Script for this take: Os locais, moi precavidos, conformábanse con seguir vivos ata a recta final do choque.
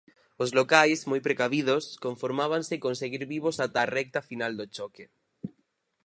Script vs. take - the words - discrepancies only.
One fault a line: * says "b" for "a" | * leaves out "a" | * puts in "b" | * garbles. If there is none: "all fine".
all fine